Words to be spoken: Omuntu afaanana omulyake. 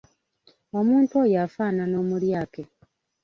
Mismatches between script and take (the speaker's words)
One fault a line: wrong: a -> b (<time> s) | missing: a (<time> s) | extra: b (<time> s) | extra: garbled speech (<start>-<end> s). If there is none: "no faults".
extra: oyo (1.2 s)